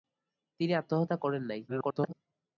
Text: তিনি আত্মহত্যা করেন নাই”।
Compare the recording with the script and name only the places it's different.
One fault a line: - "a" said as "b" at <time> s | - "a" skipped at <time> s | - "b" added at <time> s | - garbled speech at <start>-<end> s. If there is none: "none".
- garbled speech at 1.7-2.1 s